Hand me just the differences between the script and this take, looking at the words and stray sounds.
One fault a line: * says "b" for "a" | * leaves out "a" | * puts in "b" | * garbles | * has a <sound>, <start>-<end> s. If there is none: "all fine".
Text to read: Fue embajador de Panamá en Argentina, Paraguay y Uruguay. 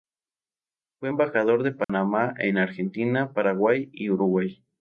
* has a dropout, 1.8-1.9 s